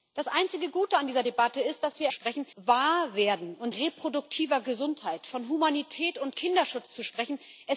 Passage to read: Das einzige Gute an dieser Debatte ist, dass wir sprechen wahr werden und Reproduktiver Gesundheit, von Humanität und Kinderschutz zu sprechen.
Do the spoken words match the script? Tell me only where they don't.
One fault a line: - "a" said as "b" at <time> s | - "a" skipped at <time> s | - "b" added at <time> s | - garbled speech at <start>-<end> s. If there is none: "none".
none